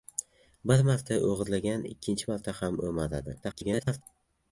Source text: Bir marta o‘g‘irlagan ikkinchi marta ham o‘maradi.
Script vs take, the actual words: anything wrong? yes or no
yes